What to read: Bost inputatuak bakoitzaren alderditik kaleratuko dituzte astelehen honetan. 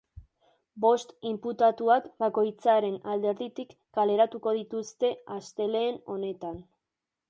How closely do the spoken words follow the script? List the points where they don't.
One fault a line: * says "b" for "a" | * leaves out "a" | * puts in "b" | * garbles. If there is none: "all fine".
all fine